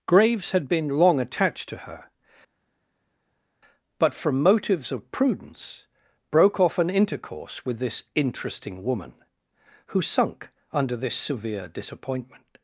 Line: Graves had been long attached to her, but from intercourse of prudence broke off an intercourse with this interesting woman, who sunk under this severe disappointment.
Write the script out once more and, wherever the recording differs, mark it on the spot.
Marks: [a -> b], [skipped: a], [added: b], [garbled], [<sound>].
Graves had been long attached to her, but from [intercourse -> motives] of prudence broke off an intercourse with this interesting woman, who sunk under this severe disappointment.